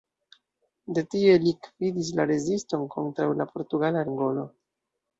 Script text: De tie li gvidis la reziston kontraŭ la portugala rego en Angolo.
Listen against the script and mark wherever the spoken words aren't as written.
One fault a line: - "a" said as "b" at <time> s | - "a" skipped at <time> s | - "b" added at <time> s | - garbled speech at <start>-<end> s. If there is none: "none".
- "rego en" skipped at 4.1 s